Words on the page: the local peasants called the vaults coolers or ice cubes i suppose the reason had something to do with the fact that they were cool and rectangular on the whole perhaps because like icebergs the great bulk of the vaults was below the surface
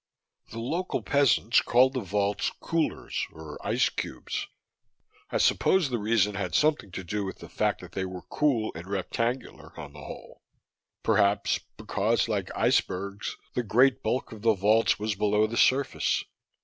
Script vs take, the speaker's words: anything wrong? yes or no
no